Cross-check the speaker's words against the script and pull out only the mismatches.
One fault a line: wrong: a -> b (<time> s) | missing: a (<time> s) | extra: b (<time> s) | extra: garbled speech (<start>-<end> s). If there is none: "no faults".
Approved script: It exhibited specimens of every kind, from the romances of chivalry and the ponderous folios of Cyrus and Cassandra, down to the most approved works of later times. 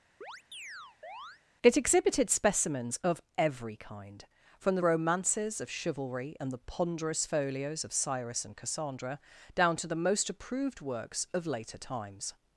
no faults